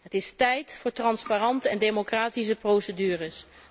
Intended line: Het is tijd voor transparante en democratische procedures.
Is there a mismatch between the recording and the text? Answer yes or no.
no